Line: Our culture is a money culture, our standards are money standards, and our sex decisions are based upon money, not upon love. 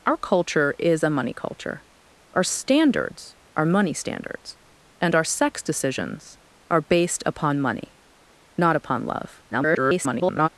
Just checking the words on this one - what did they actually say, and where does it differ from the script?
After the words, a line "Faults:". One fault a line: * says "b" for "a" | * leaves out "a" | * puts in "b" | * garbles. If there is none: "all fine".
Our culture is a money culture, our standards are money standards, and our sex decisions are based upon money, not upon love. [garbled]
Faults:
* garbles